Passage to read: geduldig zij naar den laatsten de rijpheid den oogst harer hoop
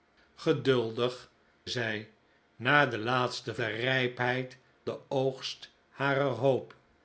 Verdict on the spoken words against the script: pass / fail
pass